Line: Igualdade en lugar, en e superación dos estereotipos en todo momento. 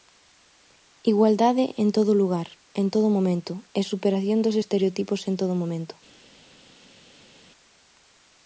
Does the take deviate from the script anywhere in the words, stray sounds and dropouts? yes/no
yes